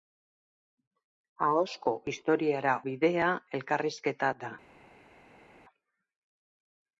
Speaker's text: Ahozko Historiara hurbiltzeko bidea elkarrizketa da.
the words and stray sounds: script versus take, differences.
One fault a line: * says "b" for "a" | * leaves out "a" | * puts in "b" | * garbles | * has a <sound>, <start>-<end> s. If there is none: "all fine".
* leaves out "hurbiltzeko"